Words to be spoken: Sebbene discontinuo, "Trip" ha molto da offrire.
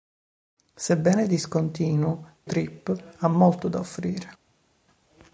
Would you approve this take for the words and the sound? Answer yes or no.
yes